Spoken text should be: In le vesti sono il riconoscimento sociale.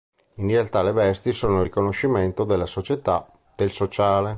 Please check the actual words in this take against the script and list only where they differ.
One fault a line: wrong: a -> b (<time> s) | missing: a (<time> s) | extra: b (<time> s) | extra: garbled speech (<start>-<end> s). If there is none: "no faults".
extra: realtà (0.5 s)
extra: della società del (2.4 s)